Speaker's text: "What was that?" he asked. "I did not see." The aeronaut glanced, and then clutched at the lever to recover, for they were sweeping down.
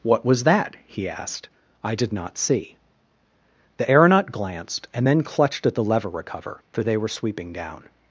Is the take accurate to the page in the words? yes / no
no